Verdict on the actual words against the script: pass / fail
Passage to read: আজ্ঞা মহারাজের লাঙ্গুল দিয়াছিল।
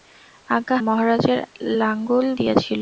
pass